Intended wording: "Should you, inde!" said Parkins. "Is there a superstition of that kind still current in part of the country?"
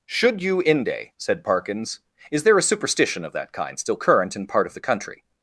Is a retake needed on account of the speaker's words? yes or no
no